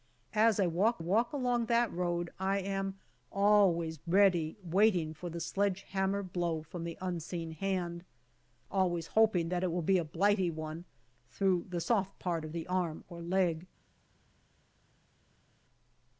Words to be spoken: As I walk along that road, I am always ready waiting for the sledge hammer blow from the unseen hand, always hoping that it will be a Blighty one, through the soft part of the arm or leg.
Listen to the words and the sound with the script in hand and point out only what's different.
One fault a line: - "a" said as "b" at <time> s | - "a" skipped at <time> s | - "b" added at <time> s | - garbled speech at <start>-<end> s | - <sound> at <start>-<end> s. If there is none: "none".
- "walk" added at 1.0 s